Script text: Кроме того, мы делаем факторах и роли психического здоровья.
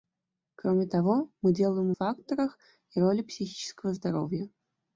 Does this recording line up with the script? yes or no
yes